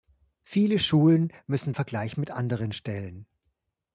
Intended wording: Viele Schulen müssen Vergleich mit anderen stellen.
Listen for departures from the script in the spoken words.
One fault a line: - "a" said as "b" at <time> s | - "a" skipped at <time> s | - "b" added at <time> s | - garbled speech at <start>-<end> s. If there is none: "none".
none